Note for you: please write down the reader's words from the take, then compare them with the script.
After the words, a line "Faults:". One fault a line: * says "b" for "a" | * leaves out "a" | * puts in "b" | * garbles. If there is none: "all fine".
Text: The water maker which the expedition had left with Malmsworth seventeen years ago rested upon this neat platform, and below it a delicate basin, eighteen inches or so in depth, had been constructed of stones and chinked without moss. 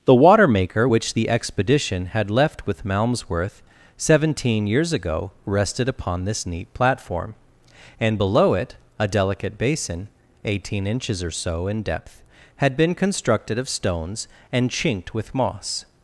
The water maker which the expedition had left with Malmsworth seventeen years ago rested upon this neat platform, and below it a delicate basin, eighteen inches or so in depth, had been constructed of stones and chinked with moss.
Faults:
* says "with" for "without"